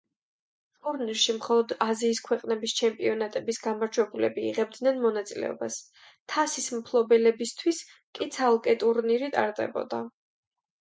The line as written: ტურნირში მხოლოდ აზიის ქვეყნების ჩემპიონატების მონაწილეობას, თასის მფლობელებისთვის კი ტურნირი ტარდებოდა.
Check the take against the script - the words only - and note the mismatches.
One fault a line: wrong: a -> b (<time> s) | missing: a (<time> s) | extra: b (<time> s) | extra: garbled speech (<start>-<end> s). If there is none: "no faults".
extra: გამარჯვებულები იღებდნენ (3.7 s)
extra: ცალკე (8.4 s)